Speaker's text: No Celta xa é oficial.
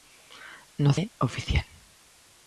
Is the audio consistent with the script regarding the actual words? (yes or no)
no